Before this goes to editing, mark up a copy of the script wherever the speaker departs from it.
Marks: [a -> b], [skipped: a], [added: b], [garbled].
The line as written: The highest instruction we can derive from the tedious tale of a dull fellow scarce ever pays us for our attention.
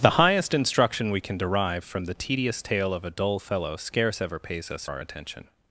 The highest instruction we can derive from the tedious tale of a dull fellow scarce ever pays us [skipped: for] our attention.